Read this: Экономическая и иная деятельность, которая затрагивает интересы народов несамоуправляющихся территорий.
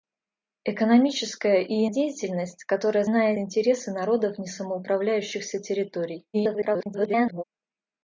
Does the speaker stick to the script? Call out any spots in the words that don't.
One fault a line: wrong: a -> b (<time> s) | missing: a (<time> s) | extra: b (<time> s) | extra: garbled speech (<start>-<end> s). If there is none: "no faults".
missing: иная (1.9 s)
wrong: затрагивает -> иная (3.1 s)
extra: garbled speech (6.3-7.4 s)